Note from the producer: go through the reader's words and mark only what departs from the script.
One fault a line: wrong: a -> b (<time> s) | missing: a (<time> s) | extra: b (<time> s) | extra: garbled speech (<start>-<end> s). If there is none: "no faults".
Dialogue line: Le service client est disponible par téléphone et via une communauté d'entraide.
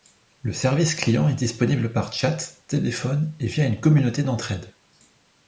extra: chat (2.1 s)